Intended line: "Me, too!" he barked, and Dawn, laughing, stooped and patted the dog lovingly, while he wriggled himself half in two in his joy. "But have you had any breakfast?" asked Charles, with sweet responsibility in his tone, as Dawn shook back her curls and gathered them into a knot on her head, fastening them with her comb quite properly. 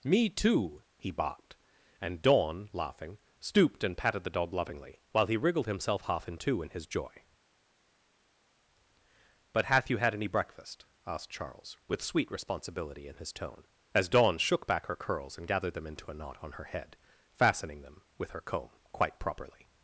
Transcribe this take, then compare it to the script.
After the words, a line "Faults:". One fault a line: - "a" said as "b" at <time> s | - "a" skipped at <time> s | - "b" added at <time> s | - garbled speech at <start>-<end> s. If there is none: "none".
"Me, too!" he barked, and Dawn, laughing, stooped and patted the dog lovingly, while he wriggled himself half in two in his joy. "But hath you had any breakfast?" asked Charles, with sweet responsibility in his tone, as Dawn shook back her curls and gathered them into a knot on her head, fastening them with her comb quite properly.
Faults:
- "have" said as "hath" at 9.7 s